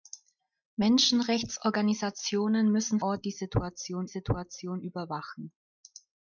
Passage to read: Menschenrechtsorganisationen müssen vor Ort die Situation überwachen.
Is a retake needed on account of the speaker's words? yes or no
yes